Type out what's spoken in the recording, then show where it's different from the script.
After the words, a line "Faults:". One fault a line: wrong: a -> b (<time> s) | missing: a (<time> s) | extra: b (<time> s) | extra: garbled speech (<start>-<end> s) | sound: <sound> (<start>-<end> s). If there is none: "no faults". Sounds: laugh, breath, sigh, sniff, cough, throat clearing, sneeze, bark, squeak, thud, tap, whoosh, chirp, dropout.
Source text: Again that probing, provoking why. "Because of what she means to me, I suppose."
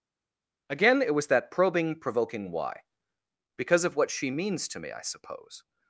Again it was that probing, provoking why. "Because of what she means to me, I suppose."
Faults:
extra: it was (1.0 s)